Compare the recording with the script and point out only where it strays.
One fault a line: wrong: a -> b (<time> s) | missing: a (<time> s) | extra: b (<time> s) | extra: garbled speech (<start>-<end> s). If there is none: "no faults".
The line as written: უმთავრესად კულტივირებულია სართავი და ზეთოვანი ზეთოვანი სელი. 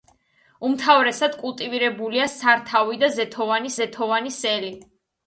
no faults